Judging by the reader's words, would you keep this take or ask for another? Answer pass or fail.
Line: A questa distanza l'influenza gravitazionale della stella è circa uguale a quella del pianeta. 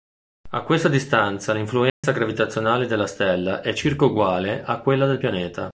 pass